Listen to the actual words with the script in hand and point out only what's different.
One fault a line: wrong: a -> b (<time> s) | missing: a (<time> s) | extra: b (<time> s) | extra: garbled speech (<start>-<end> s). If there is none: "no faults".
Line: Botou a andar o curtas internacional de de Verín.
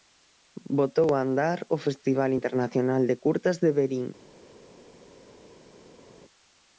wrong: curtas -> festival (1.9 s)
extra: curtas (3.2 s)